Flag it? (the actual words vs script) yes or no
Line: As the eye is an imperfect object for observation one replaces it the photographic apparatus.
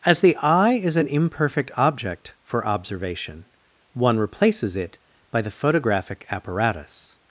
yes